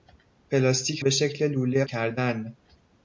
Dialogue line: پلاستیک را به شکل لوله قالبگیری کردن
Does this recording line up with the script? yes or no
no